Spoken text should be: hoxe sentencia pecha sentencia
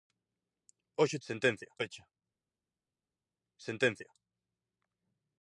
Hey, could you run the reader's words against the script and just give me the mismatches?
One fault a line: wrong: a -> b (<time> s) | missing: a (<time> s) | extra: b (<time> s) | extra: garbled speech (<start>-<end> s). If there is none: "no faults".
no faults